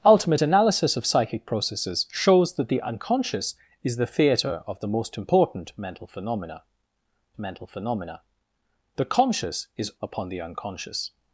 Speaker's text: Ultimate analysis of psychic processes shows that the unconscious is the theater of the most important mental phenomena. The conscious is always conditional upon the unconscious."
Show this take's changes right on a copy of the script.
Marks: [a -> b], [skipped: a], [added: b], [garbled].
Ultimate analysis of psychic processes shows that the unconscious is the theater of the most important mental phenomena. [added: mental phenomena] The conscious is [skipped: always conditional] upon the unconscious."